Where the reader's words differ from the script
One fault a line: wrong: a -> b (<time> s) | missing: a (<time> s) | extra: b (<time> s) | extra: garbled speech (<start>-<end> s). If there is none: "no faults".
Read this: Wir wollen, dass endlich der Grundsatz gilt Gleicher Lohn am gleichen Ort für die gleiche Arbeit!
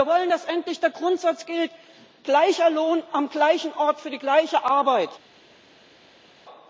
no faults